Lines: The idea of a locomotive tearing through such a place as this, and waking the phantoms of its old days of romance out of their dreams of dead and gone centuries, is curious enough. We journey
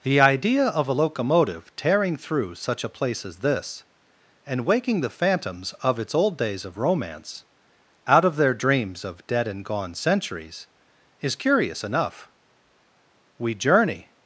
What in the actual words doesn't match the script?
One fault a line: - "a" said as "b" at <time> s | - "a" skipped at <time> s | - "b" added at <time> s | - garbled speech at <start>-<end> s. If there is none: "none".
none